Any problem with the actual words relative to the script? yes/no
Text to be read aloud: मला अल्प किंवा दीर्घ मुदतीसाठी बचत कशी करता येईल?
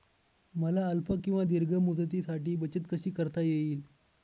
no